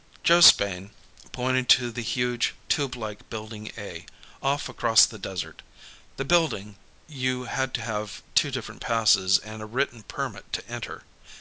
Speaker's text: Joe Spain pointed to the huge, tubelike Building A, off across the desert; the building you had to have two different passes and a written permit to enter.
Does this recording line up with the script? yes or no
yes